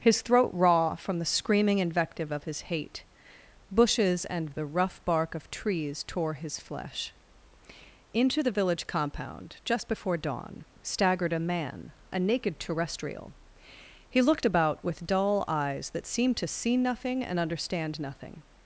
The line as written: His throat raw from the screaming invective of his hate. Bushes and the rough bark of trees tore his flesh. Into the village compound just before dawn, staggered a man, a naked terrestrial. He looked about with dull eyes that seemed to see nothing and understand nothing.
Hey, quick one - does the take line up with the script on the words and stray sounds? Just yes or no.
yes